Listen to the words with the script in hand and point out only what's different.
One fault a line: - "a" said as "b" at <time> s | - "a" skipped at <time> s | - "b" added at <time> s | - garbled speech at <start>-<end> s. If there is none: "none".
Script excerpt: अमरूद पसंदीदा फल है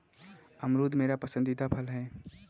- "मेरा" added at 0.9 s